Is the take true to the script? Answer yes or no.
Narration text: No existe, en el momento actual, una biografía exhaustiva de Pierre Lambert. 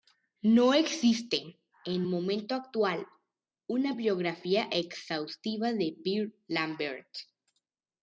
no